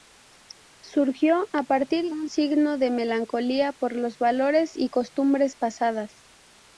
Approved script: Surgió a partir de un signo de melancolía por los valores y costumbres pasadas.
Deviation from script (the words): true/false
true